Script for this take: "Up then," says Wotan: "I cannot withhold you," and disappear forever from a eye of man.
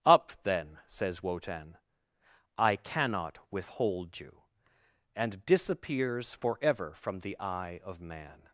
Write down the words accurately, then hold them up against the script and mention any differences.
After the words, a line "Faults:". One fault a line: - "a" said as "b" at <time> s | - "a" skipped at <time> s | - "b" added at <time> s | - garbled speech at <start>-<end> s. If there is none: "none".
"Up then," says Wotan: "I cannot withhold you," and disappears forever from the eye of man.
Faults:
- "disappear" said as "disappears" at 5.4 s
- "a" said as "the" at 7.2 s